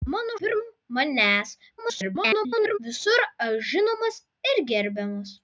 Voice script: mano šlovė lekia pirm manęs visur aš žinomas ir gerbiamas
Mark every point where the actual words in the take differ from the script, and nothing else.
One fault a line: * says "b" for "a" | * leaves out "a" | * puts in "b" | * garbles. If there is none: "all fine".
* leaves out "šlovė lekia"
* garbles